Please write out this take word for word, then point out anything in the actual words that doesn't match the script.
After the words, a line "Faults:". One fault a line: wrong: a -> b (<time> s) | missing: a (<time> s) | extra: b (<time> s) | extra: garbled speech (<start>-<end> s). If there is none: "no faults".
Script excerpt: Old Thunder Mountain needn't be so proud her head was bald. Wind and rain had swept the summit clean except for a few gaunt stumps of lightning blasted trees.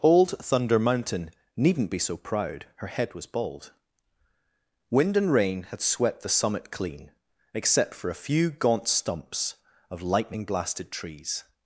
Old Thunder Mountain needn't be so proud her head was bald. Wind and rain had swept the summit clean except for a few gaunt stumps of lightning blasted trees.
Faults:
no faults